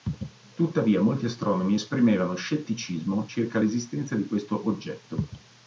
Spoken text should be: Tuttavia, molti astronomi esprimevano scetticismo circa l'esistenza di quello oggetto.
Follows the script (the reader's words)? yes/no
no